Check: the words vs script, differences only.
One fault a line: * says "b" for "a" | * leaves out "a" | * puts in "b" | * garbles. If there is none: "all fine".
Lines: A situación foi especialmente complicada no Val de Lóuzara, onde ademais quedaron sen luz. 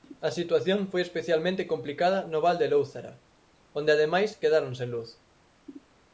all fine